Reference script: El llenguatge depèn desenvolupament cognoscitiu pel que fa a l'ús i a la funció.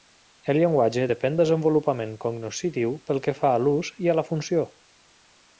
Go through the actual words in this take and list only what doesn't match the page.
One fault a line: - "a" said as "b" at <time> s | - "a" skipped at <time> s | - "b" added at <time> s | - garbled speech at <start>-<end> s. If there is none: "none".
none